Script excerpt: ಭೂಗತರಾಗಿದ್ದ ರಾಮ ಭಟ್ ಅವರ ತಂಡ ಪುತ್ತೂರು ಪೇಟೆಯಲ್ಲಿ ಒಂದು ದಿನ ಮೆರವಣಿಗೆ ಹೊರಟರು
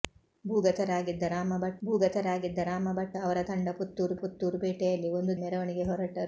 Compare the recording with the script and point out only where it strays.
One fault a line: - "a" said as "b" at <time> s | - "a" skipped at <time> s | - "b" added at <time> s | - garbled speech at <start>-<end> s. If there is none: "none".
- "ಭೂಗತರಾಗಿದ್ದ ರಾಮ ಭಟ್" added at 1.8 s
- "ಪುತ್ತೂರು" added at 4.2 s
- "ದಿನ" skipped at 5.3 s